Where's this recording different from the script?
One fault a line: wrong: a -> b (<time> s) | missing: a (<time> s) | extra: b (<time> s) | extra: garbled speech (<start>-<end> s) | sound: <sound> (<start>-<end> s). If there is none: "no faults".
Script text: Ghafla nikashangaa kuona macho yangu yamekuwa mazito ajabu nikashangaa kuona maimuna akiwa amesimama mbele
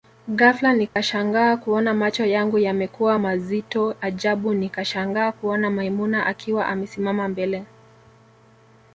sound: dropout (0.9-1.0 s)